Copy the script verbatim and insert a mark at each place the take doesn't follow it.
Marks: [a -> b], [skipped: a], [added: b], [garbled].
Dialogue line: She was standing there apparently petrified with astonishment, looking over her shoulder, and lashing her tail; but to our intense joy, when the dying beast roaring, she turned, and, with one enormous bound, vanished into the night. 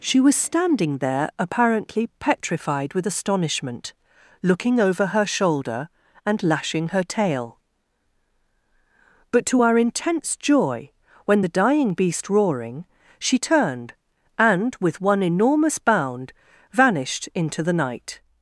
She was standing there apparently petrified with astonishment, looking over her shoulder, and lashing her tail; but to our intense joy, when the dying beast roaring, she turned, and, with one enormous bound, vanished into the night.